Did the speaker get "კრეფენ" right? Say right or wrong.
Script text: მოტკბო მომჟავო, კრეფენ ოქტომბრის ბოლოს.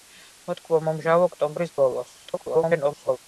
wrong